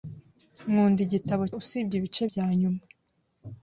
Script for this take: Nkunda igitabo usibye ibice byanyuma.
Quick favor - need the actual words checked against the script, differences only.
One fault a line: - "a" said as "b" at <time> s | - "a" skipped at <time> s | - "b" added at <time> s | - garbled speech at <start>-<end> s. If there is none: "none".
none